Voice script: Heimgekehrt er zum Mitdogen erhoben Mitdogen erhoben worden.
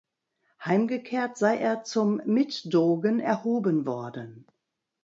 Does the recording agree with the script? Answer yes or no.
no